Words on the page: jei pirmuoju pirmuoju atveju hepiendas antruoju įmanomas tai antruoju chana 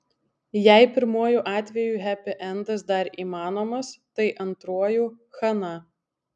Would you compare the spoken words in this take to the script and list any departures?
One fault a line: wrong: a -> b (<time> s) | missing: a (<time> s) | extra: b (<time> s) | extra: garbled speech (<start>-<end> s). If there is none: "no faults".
missing: pirmuoju (1.4 s)
wrong: antruoju -> dar (2.9 s)